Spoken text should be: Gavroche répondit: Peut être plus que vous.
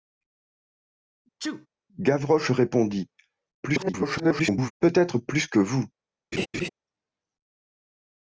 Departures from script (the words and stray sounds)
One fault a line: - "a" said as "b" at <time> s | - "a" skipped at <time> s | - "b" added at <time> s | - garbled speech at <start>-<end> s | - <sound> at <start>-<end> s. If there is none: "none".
- sneeze at 1.4-1.7 s
- garbled speech at 3.6-4.7 s
- laugh at 6.3-6.7 s